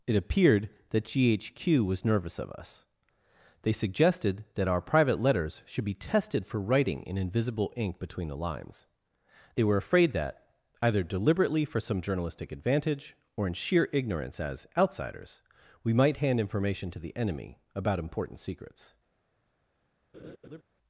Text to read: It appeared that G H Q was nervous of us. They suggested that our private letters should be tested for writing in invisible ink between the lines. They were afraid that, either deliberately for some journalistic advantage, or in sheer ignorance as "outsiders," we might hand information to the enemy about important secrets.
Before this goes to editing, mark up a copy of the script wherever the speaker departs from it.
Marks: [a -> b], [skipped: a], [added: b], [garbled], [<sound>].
It appeared that G H Q was nervous of us. They suggested that our private letters should be tested for writing in invisible ink between the lines. They were afraid that, either deliberately for some journalistic advantage, or in sheer ignorance as "outsiders," we might hand information to the enemy about important secrets. [laugh]